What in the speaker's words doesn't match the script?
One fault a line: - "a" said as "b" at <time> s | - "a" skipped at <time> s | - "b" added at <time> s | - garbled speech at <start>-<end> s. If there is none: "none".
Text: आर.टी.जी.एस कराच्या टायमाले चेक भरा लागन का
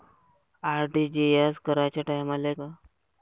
- "चेक भरा लागन" skipped at 2.5 s